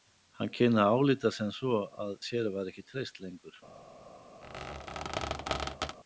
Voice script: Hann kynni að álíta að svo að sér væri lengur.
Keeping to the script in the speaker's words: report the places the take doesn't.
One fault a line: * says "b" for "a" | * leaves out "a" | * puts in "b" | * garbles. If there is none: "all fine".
* says "sem" for "að"
* puts in "ekki treyst"